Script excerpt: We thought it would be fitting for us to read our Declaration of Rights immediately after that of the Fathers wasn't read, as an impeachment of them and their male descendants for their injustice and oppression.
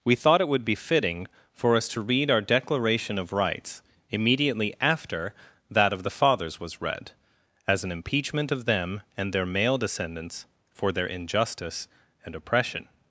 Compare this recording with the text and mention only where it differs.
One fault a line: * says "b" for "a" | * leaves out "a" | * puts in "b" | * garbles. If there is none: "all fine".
* says "was" for "wasn't"